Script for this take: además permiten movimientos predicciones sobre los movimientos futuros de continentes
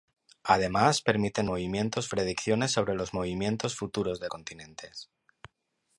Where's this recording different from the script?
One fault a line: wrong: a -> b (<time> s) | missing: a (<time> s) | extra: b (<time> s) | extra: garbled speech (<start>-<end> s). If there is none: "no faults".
no faults